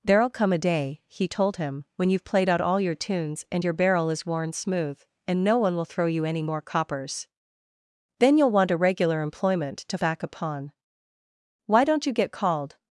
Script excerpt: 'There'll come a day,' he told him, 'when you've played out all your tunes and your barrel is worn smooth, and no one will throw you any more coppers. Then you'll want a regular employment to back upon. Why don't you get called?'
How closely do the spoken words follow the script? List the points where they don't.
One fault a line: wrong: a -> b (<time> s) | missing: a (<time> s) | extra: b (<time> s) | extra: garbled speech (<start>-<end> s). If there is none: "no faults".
no faults